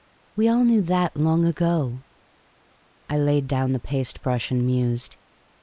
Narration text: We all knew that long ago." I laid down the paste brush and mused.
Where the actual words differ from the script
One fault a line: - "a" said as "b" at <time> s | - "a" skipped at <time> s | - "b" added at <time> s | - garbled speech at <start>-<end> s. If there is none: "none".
none